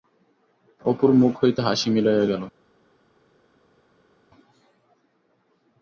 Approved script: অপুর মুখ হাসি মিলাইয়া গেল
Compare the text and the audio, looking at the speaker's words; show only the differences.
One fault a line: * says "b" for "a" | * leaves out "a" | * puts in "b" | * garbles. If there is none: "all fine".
* puts in "হইতে"